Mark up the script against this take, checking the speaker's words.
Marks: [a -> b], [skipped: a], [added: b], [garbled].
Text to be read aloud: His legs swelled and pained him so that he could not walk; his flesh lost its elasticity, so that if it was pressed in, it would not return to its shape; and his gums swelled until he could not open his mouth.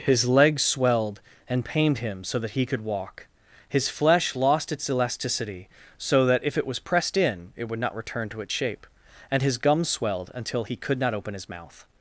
His legs swelled and pained him so that he could [skipped: not] walk; his flesh lost its elasticity, so that if it was pressed in, it would not return to its shape; and his gums swelled until he could not open his mouth.